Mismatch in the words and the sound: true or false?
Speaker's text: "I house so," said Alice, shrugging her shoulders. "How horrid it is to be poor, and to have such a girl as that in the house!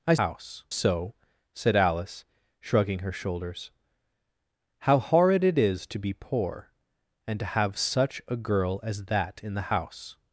false